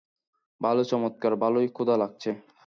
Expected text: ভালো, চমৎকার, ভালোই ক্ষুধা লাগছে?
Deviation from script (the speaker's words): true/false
false